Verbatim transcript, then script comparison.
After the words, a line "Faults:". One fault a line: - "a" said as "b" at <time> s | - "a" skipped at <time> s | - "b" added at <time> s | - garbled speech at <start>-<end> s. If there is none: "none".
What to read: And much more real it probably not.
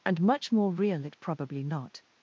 And much more real it probably not.
Faults:
none